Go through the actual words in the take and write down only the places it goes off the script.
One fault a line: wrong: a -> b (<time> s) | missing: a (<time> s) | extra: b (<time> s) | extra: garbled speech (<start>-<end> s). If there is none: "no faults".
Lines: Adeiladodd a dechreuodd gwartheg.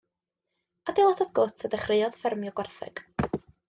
extra: gwt (1.4 s)
extra: ffermio (2.2 s)